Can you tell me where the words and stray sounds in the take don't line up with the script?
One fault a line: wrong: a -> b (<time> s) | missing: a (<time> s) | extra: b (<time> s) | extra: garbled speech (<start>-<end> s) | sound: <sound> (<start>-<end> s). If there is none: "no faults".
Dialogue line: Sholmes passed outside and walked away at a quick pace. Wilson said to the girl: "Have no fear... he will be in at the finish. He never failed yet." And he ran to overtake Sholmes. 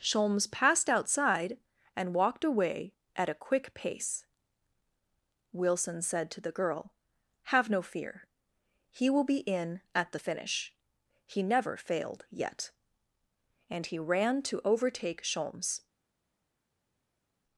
no faults